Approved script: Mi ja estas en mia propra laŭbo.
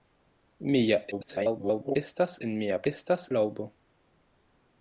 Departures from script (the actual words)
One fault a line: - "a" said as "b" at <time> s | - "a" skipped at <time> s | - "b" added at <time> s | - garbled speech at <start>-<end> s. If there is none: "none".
- garbled speech at 1.1-2.0 s
- "propra" said as "estas" at 2.9 s